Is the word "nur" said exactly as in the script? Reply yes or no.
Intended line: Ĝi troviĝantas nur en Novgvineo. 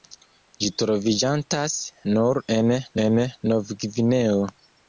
yes